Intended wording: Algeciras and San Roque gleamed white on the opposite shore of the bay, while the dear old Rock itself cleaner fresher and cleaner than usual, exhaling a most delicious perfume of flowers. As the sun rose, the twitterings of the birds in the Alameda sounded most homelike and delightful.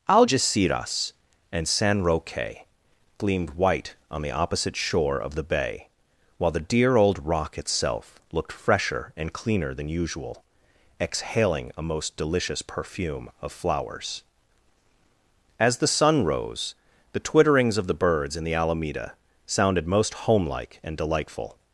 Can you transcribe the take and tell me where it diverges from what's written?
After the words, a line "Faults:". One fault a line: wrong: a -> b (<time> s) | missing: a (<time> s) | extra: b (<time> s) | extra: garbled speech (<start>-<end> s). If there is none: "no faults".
Algeciras and San Roque gleamed white on the opposite shore of the bay, while the dear old Rock itself looked fresher and cleaner than usual, exhaling a most delicious perfume of flowers. As the sun rose, the twitterings of the birds in the Alameda sounded most homelike and delightful.
Faults:
wrong: cleaner -> looked (8.3 s)